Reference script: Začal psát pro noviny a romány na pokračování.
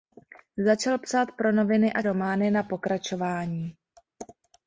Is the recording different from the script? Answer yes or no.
no